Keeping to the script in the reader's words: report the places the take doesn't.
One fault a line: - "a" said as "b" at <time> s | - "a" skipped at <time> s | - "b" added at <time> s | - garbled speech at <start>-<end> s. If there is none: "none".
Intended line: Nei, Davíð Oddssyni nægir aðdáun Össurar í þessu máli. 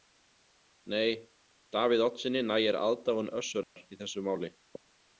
none